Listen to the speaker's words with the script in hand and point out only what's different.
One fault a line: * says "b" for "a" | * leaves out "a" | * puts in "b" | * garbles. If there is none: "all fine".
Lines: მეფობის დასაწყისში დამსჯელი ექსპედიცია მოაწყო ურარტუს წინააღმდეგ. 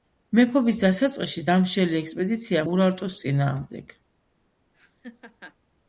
* leaves out "მოაწყო"